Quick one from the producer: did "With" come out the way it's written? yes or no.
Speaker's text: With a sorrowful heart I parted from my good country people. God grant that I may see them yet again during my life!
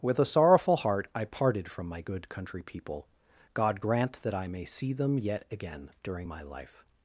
yes